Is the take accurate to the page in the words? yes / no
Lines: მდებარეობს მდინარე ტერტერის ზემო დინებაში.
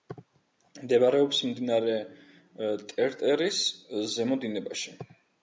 yes